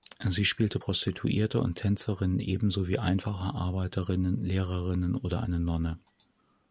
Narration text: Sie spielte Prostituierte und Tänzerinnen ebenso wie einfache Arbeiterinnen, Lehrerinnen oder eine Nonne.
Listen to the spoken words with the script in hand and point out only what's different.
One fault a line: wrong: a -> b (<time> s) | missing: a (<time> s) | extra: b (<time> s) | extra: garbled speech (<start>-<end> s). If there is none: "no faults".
no faults